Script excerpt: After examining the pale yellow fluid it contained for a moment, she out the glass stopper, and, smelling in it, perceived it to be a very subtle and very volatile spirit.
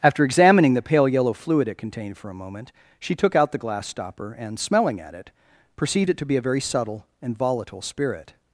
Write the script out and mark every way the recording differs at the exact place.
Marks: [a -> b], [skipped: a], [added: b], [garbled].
After examining the pale yellow fluid it contained for a moment, she [added: took] out the glass stopper, and, smelling [in -> at] it, perceived it to be a very subtle and [skipped: very] volatile spirit.